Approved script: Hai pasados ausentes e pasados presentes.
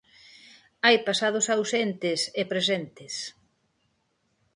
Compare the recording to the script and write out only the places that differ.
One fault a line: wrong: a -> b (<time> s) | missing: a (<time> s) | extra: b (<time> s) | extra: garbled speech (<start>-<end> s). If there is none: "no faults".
missing: pasados (2.4 s)